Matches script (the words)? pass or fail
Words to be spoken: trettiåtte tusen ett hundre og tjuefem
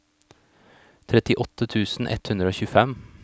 pass